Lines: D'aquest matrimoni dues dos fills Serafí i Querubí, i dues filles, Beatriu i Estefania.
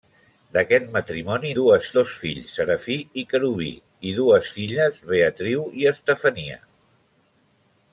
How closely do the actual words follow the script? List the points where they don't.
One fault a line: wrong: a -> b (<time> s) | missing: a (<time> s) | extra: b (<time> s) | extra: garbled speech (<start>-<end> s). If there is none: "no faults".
no faults